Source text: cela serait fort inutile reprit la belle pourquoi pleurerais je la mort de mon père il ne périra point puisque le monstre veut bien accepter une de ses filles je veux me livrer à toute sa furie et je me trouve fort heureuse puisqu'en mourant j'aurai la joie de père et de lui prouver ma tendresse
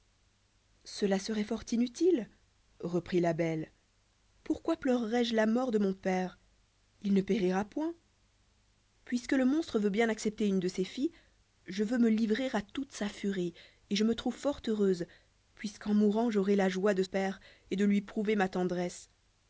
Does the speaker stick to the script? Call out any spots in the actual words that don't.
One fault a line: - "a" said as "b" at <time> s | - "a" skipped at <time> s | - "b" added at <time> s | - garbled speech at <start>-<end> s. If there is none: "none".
none